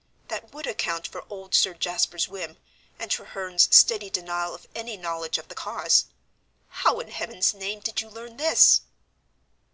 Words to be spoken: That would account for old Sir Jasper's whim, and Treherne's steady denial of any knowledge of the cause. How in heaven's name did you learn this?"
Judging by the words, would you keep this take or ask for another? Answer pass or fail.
pass